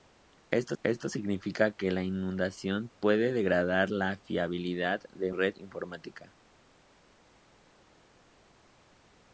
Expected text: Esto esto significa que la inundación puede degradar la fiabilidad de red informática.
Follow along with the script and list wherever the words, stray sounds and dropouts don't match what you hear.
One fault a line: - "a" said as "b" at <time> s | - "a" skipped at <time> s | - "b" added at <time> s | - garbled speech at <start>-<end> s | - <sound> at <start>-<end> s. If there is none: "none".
none